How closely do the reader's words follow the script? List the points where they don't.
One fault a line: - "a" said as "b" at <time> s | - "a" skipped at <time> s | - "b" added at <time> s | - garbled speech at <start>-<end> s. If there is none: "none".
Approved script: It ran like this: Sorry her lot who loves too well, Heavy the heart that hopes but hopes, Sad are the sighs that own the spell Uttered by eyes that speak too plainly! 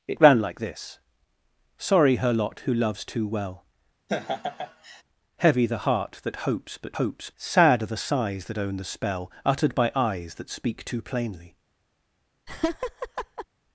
none